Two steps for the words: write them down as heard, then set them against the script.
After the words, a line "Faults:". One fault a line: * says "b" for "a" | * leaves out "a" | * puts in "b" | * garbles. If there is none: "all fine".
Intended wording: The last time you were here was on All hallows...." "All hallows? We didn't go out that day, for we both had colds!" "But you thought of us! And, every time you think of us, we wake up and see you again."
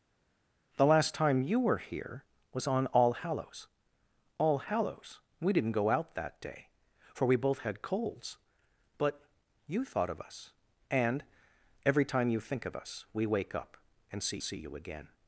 The last time you were here was on All hallows...." "All hallows? We didn't go out that day, for we both had colds!" "But you thought of us! And, every time you think of us, we wake up and see see you again."
Faults:
* puts in "see"